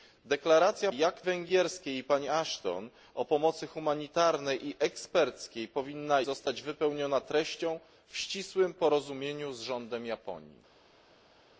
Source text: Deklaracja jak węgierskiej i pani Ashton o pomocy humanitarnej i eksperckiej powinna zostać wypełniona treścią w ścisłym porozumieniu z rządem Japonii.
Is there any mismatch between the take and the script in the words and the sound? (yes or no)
no